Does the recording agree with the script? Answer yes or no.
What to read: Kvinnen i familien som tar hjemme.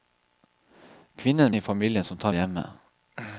yes